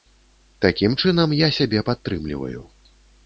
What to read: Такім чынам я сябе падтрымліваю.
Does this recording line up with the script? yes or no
yes